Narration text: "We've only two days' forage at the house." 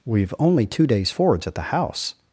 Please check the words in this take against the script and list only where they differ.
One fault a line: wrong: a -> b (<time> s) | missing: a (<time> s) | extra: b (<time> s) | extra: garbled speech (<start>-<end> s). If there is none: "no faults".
wrong: forage -> forwards (1.1 s)